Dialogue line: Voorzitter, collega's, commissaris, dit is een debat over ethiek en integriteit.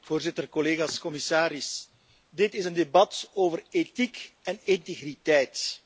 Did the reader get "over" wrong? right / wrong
right